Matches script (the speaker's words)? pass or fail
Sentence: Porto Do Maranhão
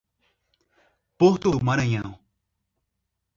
pass